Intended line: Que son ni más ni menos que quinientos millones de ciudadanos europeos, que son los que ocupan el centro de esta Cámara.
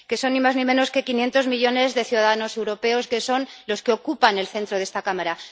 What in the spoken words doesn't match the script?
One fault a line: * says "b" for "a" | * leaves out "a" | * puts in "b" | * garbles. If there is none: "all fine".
all fine